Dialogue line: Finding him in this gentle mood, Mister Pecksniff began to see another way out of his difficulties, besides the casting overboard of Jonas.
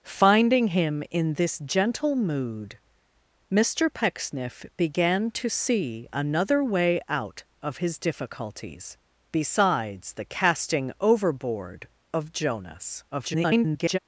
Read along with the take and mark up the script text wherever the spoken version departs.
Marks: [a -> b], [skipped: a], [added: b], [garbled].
Finding him in this gentle mood, Mister Pecksniff began to see another way out of his difficulties, besides the casting overboard of Jonas. [garbled]